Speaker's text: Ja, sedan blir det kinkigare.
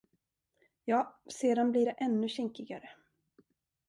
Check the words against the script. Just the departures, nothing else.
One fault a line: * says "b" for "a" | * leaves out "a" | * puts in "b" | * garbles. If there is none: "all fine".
* puts in "ännu"